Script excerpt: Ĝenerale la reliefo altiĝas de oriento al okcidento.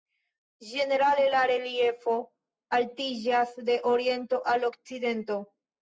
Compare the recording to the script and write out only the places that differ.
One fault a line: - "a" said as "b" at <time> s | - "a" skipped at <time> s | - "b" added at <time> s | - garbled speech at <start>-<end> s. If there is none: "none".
none